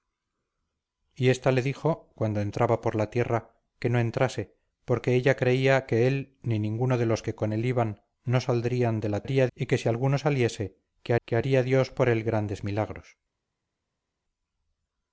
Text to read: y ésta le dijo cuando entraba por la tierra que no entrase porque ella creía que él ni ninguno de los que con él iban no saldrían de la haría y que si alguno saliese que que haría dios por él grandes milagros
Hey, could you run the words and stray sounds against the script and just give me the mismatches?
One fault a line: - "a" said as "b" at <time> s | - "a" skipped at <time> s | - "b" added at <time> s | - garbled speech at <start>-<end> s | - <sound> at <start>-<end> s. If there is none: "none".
none